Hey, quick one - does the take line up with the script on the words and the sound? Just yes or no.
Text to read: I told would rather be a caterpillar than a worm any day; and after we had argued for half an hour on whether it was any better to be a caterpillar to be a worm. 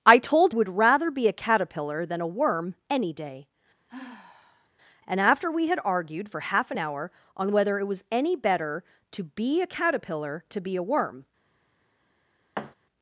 no